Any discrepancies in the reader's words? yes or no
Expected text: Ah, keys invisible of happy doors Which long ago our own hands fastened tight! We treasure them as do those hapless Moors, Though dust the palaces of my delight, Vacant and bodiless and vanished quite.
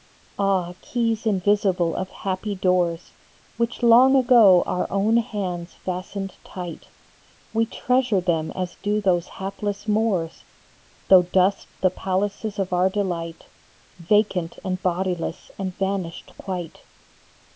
yes